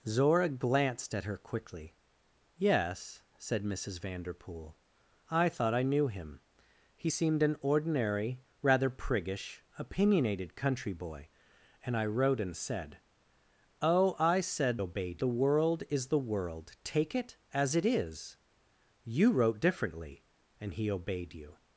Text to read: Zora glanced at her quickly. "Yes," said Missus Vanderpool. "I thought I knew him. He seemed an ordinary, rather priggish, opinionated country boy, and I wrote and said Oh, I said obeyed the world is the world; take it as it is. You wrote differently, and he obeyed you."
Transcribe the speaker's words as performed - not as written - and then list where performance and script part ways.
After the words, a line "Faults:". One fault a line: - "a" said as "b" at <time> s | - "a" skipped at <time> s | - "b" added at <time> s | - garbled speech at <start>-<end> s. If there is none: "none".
Zora glanced at her quickly. "Yes," said Missus Vanderpool. "I thought I knew him. He seemed an ordinary, rather priggish, opinionated country boy, and I wrote and said Oh, I said obeyed the world is the world; take it as it is. You wrote differently, and he obeyed you."
Faults:
none